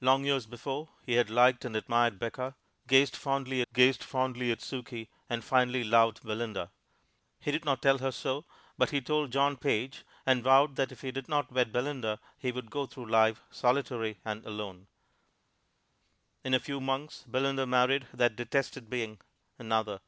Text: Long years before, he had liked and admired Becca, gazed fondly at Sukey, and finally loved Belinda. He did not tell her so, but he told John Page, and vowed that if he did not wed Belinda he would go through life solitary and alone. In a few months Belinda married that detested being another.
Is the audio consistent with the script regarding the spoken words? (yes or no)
no